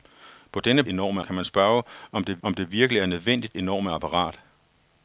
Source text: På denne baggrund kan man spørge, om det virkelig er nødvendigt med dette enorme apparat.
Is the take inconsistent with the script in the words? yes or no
yes